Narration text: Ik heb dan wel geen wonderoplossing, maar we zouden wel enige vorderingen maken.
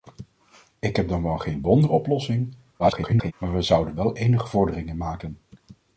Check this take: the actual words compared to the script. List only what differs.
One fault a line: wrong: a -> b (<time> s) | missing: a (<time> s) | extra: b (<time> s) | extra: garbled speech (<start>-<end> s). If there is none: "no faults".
extra: garbled speech (2.8-3.3 s)